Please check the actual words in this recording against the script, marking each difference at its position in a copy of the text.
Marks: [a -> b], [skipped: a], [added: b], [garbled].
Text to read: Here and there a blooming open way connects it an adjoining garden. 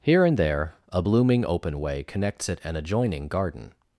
Here and there a blooming open way connects it an adjoining garden.